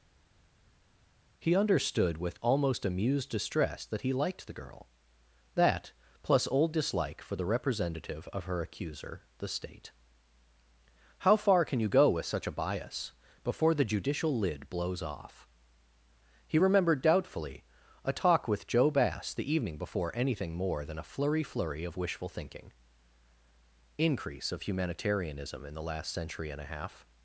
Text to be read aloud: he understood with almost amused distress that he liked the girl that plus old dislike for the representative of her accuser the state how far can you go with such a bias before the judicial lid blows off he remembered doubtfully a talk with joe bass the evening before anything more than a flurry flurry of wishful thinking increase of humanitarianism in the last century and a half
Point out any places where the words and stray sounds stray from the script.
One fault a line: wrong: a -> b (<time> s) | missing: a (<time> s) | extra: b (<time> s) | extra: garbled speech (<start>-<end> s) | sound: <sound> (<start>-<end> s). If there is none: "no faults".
no faults